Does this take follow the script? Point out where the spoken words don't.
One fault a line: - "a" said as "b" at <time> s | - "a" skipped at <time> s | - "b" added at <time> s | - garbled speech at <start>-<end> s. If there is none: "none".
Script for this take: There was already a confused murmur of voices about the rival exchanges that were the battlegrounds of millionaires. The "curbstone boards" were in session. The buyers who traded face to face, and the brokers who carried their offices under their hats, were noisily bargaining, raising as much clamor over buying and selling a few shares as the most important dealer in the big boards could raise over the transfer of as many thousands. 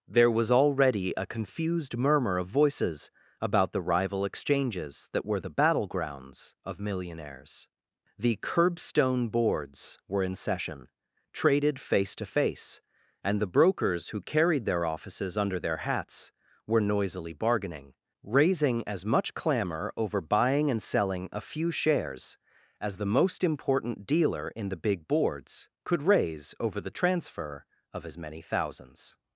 - "The buyers who" skipped at 10.9 s